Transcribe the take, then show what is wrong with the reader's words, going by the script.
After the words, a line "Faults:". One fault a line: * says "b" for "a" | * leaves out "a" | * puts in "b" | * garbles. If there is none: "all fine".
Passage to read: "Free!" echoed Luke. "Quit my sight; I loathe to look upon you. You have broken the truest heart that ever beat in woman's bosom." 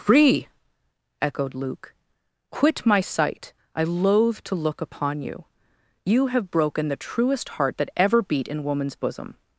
"Free!" echoed Luke. "Quit my sight; I loathe to look upon you. You have broken the truest heart that ever beat in woman's bosom."
Faults:
all fine